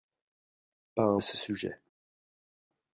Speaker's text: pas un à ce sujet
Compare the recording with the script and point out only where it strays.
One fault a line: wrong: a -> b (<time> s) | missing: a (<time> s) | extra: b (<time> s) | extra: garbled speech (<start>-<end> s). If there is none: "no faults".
no faults